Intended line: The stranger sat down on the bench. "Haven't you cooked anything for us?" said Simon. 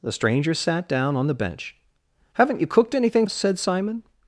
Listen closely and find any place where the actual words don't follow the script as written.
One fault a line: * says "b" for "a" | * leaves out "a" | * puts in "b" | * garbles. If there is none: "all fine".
* leaves out "for"